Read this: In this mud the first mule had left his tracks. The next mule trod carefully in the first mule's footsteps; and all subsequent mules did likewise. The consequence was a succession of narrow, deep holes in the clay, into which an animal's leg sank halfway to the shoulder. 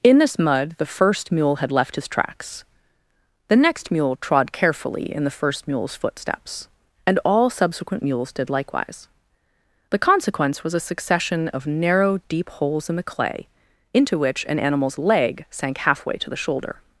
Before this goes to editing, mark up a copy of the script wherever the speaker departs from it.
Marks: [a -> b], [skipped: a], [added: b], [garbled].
In this mud the first mule had left his tracks. The next mule trod carefully in the first mule's footsteps; and all subsequent mules did likewise. The consequence was a succession of narrow, deep holes in the clay, into which an animal's leg sank halfway to the shoulder.